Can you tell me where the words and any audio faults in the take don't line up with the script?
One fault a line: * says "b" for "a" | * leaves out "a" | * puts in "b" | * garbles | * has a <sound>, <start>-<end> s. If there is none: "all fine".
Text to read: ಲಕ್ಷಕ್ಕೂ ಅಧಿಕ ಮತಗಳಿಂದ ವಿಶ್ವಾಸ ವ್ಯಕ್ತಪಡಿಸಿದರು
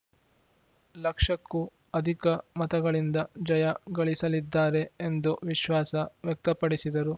* puts in "ಜಯ ಗಳಿಸಲಿದ್ದಾರೆ ಎಂದು"